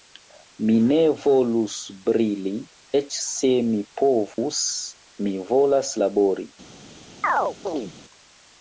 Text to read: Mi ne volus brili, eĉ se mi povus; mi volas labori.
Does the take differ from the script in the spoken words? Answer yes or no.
no